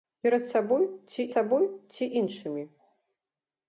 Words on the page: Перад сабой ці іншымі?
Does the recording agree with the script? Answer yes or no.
no